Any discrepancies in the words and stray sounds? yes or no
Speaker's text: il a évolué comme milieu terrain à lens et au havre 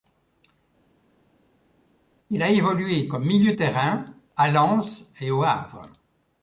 no